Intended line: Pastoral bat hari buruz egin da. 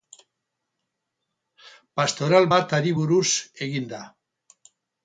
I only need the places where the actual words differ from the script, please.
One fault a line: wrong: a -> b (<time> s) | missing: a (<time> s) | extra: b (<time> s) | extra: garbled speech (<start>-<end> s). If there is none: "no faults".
no faults